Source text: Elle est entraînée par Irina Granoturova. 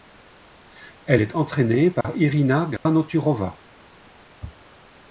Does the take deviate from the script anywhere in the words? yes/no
no